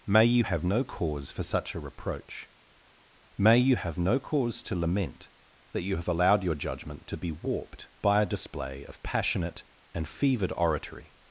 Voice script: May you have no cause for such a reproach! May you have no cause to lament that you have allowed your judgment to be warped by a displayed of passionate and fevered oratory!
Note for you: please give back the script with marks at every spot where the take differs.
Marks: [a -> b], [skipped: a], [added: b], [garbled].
May you have no cause for such a reproach! May you have no cause to lament that you have allowed your judgment to be warped by a [displayed -> display] of passionate and fevered oratory!